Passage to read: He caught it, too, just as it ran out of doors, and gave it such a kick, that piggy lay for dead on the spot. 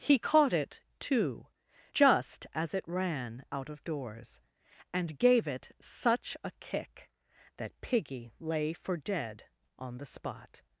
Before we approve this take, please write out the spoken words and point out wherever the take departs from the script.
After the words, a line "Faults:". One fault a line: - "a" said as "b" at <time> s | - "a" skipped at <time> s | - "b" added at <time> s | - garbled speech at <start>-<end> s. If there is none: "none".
He caught it, too, just as it ran out of doors, and gave it such a kick, that piggy lay for dead on the spot.
Faults:
none